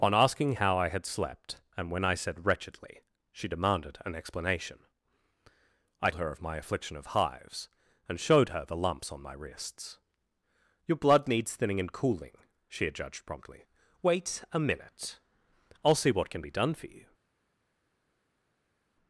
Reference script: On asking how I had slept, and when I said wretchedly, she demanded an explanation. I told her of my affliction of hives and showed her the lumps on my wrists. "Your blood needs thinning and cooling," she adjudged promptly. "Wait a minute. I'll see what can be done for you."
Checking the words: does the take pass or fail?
fail